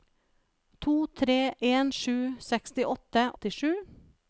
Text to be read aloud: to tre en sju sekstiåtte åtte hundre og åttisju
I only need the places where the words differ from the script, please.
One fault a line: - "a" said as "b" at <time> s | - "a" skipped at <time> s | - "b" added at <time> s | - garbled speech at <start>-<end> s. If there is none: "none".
- "åtte hundre og" skipped at 3.3 s